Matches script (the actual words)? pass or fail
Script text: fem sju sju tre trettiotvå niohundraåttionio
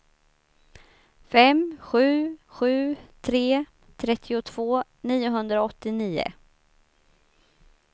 pass